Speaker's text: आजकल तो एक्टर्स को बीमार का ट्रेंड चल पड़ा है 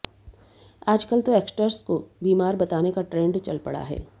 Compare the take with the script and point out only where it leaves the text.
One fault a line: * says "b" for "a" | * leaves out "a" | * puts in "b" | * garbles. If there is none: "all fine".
* puts in "बताने"